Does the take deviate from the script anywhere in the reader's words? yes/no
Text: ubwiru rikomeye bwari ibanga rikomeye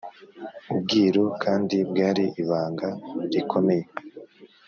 yes